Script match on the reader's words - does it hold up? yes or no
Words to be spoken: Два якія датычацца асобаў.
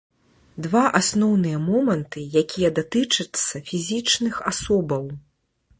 no